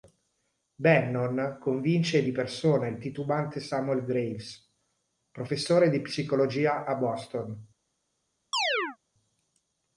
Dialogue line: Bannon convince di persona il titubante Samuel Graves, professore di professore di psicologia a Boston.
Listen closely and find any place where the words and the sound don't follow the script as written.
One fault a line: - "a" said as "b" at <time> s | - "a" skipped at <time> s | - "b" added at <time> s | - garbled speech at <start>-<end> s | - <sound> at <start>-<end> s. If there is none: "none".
- "professore di" skipped at 6.0 s
- chirp at 8.5-9.0 s